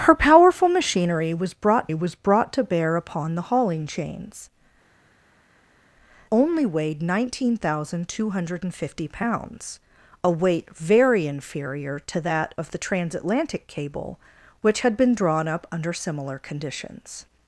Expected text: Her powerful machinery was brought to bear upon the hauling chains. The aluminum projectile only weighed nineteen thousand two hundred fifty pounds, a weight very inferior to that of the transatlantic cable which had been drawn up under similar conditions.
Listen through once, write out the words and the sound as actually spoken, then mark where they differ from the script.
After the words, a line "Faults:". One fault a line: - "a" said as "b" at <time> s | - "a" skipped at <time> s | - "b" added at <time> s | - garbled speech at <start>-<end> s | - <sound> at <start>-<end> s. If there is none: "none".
Her powerful machinery was brought was brought to bear upon the hauling chains. Only weighed nineteen thousand two hundred fifty pounds, a weight very inferior to that of the transatlantic cable which had been drawn up under similar conditions.
Faults:
- "was brought" added at 1.9 s
- "The aluminum projectile" skipped at 4.5 s